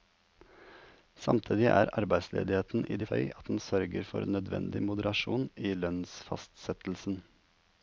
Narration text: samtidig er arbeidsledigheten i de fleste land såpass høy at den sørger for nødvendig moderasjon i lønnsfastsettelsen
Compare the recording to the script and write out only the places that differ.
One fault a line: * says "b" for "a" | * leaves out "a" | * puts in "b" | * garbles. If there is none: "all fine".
* leaves out "fleste land såpass"